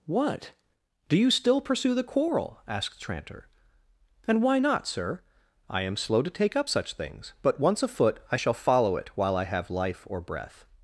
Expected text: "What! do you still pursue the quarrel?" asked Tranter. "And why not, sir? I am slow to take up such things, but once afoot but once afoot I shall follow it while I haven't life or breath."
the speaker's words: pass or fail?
fail